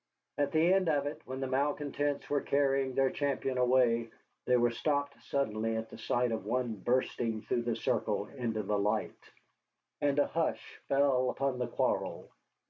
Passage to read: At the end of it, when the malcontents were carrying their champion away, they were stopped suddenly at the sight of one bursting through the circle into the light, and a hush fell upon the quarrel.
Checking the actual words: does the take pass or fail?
pass